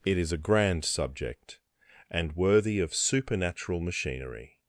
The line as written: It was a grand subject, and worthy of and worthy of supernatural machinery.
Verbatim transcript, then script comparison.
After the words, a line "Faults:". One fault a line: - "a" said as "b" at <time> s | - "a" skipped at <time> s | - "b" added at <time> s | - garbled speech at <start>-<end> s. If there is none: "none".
It is a grand subject, and worthy of supernatural machinery.
Faults:
- "was" said as "is" at 0.2 s
- "and worthy of" skipped at 2.9 s